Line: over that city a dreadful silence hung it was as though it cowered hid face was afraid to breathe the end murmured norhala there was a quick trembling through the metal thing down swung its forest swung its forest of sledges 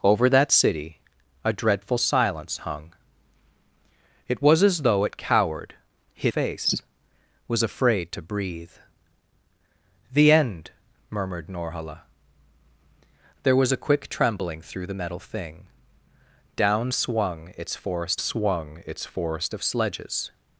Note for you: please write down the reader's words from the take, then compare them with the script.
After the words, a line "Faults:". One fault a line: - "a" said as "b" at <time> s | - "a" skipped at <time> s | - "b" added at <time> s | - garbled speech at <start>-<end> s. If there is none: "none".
over that city a dreadful silence hung it was as though it cowered hid face was afraid to breathe the end murmured norhala there was a quick trembling through the metal thing down swung its forest swung its forest of sledges
Faults:
none